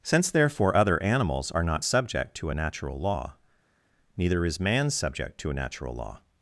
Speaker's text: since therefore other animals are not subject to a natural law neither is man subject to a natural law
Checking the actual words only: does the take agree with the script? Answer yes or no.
yes